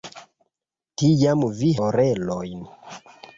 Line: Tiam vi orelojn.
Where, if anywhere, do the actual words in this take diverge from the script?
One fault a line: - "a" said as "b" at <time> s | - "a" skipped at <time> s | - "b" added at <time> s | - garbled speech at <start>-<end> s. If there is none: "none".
none